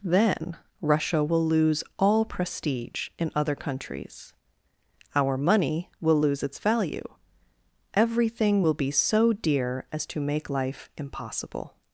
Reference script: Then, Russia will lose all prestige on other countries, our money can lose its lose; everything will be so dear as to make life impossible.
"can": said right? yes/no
no